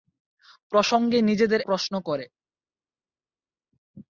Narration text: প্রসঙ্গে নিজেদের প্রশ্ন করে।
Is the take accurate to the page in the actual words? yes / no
yes